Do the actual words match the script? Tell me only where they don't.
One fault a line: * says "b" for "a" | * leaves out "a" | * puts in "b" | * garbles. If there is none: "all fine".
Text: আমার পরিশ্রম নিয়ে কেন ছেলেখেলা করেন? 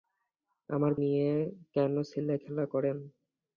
* leaves out "পরিশ্রম"